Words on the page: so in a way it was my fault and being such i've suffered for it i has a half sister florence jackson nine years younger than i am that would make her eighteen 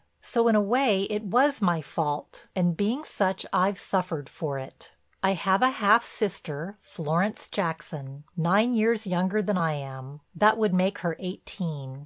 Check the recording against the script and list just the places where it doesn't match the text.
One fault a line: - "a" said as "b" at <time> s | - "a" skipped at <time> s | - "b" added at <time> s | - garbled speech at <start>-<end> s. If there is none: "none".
- "has" said as "have" at 5.3 s